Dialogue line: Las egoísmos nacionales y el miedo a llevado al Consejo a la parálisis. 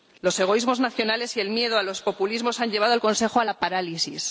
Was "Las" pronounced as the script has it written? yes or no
no